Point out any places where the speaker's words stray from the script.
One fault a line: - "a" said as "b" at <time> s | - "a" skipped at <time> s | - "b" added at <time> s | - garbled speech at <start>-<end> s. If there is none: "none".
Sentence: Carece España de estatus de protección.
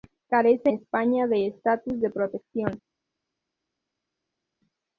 none